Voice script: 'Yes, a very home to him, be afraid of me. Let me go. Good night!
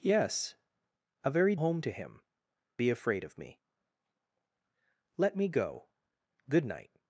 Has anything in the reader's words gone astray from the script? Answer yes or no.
no